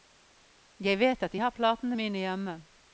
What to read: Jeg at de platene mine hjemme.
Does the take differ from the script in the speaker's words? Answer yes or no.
yes